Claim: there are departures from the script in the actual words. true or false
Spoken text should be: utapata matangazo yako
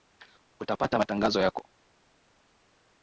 false